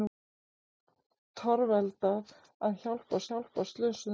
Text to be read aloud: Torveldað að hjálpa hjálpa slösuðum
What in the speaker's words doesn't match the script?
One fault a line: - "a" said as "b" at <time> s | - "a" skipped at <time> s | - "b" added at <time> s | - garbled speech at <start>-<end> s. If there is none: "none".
none